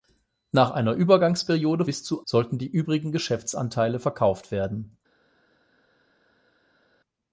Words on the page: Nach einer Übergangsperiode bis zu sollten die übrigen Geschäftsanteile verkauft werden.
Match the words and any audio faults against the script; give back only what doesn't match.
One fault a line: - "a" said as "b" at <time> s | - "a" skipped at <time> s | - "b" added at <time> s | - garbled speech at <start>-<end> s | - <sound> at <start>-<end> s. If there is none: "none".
none